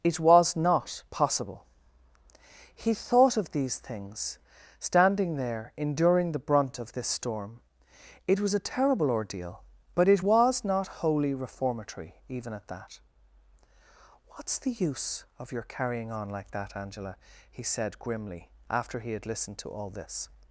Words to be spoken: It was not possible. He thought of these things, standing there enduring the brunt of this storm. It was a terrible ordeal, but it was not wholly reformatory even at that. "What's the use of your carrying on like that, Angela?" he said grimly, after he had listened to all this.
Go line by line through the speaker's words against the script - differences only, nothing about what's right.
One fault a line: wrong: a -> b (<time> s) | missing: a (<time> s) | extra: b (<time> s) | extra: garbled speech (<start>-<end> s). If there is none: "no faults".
no faults